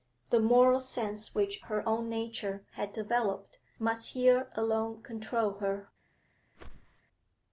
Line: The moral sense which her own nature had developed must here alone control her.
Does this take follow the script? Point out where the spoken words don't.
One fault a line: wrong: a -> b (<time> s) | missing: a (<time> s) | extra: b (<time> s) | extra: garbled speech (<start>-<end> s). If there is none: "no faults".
no faults